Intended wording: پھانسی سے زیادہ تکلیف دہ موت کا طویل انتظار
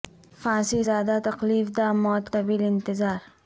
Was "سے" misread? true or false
true